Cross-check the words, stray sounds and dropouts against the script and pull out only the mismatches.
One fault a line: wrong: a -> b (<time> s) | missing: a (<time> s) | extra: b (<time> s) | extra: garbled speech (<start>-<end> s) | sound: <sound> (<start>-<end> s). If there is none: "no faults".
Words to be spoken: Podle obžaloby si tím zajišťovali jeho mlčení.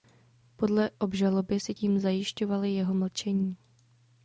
no faults